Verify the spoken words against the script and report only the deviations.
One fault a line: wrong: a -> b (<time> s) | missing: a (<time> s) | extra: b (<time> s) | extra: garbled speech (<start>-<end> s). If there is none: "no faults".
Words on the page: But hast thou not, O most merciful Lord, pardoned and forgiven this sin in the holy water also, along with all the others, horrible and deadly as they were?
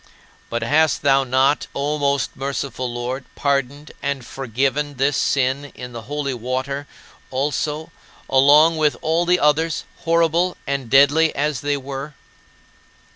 no faults